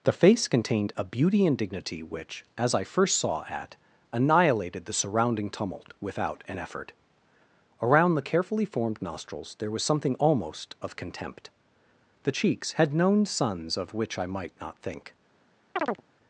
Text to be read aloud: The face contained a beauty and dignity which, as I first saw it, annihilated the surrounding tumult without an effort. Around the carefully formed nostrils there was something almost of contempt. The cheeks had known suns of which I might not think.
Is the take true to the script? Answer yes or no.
no